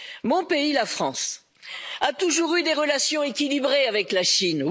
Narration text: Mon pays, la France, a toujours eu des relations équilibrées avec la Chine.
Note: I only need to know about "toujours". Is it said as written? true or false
true